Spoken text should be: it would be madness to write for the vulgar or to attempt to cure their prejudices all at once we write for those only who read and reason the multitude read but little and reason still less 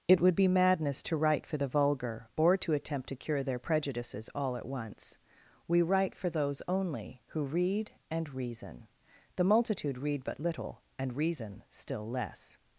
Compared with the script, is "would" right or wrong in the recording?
right